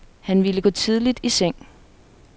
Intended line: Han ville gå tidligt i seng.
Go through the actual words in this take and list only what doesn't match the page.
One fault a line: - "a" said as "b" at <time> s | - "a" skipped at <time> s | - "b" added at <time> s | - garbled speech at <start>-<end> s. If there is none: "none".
none